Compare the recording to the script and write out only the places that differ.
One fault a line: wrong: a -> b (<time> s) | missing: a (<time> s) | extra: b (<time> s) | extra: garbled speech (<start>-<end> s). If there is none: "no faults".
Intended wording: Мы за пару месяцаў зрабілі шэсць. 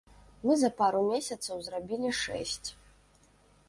no faults